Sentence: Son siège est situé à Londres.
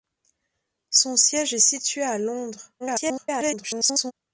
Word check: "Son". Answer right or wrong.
right